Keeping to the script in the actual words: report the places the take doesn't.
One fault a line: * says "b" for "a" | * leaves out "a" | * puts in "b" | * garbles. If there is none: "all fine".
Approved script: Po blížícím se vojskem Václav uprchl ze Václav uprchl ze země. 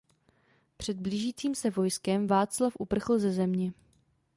* says "Před" for "Po"
* leaves out "Václav uprchl ze"